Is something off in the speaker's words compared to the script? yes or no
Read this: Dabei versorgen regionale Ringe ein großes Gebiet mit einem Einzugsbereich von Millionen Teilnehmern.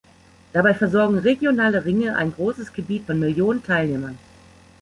yes